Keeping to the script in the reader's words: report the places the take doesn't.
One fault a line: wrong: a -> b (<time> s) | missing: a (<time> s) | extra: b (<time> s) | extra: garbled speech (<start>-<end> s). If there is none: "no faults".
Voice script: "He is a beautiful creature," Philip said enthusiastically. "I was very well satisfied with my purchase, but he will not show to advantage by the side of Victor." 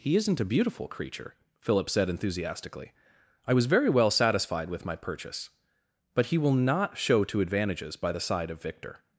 wrong: is -> isn't (0.1 s)
wrong: advantage -> advantages (7.4 s)